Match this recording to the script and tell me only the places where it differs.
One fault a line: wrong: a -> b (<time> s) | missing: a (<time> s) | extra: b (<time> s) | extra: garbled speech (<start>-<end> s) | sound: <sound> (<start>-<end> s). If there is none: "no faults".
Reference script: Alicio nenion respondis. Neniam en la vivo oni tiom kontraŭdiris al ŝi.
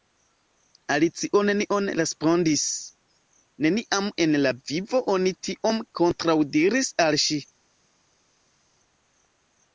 no faults